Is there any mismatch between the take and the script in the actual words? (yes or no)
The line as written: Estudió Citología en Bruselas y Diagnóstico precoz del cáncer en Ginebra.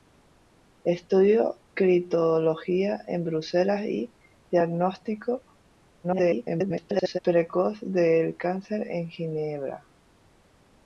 yes